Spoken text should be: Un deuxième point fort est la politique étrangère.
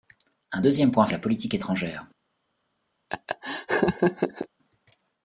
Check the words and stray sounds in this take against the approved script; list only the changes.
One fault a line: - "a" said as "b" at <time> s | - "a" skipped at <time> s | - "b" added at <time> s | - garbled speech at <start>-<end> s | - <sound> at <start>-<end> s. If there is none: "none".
- "fort" skipped at 1.1 s
- laugh at 3.1-4.5 s